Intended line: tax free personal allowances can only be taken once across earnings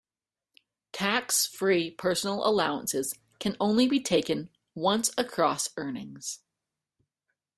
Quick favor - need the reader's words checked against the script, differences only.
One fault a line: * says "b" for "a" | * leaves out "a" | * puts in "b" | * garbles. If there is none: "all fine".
all fine